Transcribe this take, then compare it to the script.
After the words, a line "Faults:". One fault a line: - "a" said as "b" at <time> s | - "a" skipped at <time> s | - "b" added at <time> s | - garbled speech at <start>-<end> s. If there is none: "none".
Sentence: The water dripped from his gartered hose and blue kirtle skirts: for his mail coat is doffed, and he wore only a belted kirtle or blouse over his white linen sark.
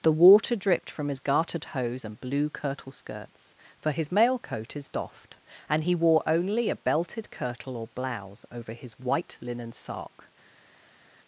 The water dripped from his gartered hose and blue kirtle skirts: for his mail coat is doffed, and he wore only a belted kirtle or blouse over his white linen sark.
Faults:
none